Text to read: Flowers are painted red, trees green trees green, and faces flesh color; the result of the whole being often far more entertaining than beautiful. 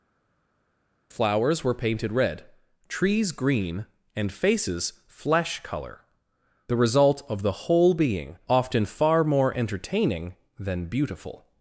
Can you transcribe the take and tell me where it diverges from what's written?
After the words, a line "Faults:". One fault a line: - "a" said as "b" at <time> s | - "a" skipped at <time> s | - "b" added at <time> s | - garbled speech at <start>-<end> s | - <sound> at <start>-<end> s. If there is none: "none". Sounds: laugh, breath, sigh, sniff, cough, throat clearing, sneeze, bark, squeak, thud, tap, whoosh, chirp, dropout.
Flowers were painted red, trees green, and faces flesh color; the result of the whole being often far more entertaining than beautiful.
Faults:
- "are" said as "were" at 1.6 s
- "trees green" skipped at 3.9 s